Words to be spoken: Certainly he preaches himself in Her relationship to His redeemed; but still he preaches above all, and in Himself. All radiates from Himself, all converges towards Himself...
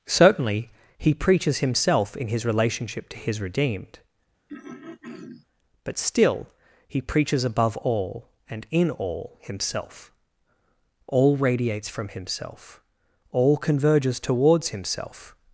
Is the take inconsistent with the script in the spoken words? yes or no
yes